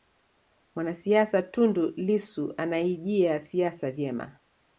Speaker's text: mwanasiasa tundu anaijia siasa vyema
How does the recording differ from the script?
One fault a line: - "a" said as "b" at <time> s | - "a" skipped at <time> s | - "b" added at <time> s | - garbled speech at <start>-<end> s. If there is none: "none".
- "lissu" added at 1.9 s